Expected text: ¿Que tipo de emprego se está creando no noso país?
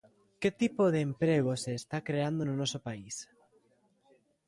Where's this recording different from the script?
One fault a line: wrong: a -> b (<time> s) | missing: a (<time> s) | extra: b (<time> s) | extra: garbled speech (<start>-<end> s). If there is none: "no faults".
no faults